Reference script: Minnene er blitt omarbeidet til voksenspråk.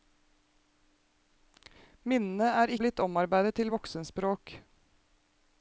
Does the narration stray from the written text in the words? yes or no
no